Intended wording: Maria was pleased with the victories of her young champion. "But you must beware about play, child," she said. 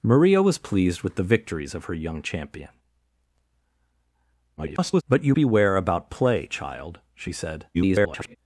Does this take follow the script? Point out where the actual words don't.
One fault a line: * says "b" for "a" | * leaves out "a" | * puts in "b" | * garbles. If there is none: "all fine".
* garbles
* leaves out "must"
* garbles